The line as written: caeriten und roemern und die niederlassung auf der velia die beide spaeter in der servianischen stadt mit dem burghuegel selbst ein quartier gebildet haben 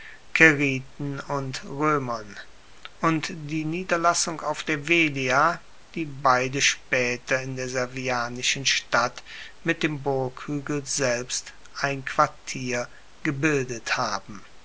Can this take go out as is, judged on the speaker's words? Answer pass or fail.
pass